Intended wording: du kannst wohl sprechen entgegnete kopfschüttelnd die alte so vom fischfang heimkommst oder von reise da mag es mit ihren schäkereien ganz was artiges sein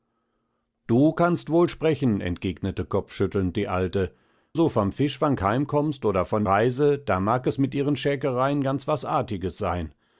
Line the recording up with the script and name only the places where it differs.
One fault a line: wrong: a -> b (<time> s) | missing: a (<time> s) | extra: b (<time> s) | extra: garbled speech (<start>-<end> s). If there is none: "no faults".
no faults